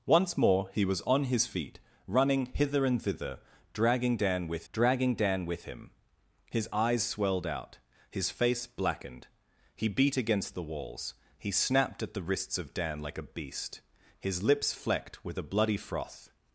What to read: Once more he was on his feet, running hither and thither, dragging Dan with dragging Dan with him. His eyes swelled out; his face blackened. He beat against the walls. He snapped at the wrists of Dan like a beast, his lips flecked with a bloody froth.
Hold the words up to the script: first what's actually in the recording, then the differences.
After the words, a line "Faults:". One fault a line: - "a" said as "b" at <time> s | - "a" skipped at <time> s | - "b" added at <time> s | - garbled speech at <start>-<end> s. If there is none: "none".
Once more he was on his feet, running hither and thither, dragging Dan with dragging Dan with him. His eyes swelled out; his face blackened. He beat against the walls. He snapped at the wrists of Dan like a beast, his lips flecked with a bloody froth.
Faults:
none